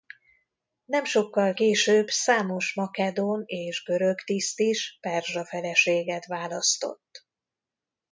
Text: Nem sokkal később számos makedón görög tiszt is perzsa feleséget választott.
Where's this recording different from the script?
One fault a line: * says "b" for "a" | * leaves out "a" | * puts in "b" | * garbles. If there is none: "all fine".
* puts in "és"